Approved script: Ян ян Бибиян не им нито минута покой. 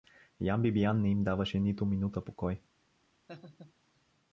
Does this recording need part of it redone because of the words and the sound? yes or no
yes